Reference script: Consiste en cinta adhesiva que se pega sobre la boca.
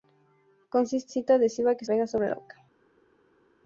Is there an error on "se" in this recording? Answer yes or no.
yes